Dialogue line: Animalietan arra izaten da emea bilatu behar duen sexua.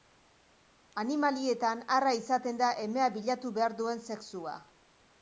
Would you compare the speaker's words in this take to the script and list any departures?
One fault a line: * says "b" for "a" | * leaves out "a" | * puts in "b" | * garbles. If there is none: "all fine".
all fine